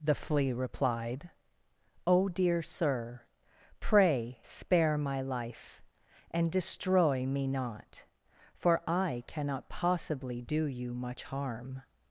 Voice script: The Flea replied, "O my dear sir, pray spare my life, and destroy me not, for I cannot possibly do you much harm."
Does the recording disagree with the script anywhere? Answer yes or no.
yes